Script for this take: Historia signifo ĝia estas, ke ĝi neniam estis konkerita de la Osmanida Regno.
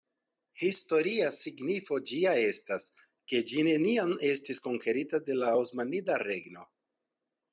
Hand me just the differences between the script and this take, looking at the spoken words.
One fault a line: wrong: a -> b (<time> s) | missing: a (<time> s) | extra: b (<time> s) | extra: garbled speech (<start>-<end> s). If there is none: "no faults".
no faults